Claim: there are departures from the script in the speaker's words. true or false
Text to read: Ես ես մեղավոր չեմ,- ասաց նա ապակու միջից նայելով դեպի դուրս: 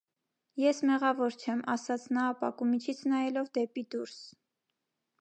true